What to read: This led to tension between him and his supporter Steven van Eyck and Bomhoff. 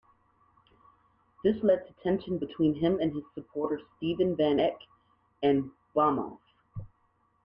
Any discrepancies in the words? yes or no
no